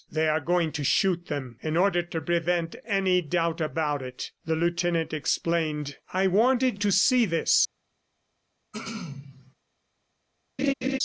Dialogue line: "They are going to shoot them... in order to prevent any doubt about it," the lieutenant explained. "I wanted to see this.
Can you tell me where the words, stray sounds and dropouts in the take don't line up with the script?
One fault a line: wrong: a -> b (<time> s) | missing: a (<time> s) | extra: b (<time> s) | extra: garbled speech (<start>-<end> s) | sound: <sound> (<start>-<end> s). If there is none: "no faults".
sound: throat clearing (8.7-9.5 s)
sound: laugh (10.6-11.0 s)